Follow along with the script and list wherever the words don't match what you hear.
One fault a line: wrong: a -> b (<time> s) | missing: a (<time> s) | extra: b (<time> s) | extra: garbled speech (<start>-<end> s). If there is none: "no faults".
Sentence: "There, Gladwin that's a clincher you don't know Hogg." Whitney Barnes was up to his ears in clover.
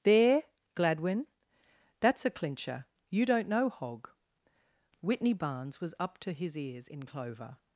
no faults